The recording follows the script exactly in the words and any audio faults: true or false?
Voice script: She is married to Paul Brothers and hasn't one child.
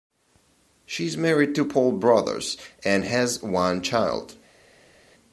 false